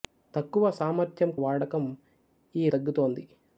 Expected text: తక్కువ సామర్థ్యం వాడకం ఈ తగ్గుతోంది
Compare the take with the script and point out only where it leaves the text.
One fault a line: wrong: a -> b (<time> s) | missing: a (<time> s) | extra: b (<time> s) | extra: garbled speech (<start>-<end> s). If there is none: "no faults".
no faults